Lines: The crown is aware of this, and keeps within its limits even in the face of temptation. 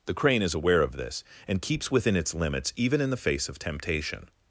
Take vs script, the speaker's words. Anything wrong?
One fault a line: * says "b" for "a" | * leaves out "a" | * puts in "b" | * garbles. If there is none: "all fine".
* says "crane" for "crown"